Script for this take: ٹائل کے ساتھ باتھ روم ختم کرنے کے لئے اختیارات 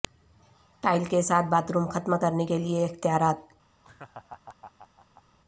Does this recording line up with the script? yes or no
yes